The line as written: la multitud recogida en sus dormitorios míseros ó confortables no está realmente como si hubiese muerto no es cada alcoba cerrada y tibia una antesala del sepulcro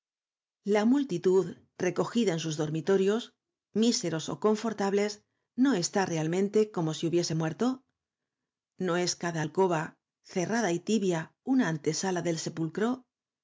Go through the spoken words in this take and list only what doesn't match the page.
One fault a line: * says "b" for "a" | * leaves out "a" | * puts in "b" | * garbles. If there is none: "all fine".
all fine